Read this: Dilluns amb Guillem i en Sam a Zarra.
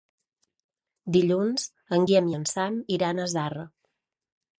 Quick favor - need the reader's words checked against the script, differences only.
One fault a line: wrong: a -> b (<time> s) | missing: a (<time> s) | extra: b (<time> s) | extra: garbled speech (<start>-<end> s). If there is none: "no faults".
wrong: amb -> en (2.0 s)
extra: iran (3.0 s)